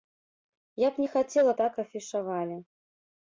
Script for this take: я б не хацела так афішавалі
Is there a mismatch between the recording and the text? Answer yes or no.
no